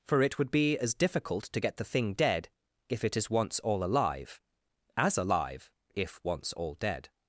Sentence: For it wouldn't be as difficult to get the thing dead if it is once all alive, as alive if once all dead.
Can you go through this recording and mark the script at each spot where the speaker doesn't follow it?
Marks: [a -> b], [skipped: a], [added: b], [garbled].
For it [wouldn't -> would] be as difficult to get the thing dead if it is once all alive, as alive if once all dead.